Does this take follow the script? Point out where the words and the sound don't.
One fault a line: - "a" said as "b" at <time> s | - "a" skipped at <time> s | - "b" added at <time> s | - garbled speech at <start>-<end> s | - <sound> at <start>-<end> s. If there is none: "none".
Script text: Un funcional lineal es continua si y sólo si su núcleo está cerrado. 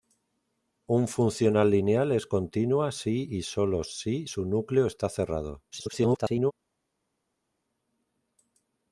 - garbled speech at 5.7-6.5 s